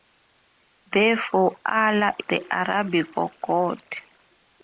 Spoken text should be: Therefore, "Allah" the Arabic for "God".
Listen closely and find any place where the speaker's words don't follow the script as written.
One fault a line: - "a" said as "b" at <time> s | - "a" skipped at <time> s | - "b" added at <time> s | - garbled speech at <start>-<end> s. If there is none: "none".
none